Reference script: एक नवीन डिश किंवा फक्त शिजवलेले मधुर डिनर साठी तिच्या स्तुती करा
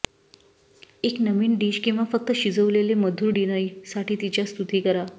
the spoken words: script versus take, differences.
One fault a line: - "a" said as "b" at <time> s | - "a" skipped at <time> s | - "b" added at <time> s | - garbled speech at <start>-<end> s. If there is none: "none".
none